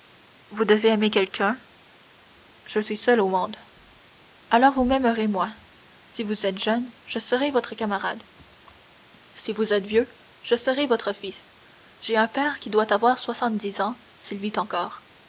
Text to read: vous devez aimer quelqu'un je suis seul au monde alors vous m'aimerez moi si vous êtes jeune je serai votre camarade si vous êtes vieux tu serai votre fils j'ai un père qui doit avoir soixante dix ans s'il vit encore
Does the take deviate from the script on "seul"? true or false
false